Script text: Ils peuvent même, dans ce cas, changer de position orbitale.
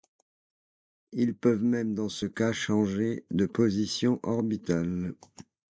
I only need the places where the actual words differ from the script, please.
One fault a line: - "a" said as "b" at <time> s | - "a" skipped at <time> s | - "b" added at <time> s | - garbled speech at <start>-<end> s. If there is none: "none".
none